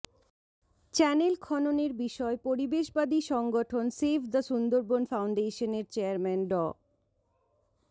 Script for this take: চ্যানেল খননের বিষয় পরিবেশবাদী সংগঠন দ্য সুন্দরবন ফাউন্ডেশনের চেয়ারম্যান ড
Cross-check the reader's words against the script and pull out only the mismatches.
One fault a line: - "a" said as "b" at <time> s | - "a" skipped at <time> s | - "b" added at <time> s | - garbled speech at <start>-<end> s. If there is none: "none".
- "সেভ" added at 4.0 s